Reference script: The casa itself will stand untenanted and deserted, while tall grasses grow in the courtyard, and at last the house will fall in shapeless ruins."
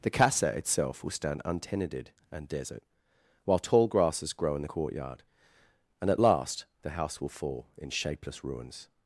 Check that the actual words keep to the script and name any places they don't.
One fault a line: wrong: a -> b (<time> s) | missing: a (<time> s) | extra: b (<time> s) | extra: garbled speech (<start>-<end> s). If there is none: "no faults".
wrong: deserted -> desert (2.5 s)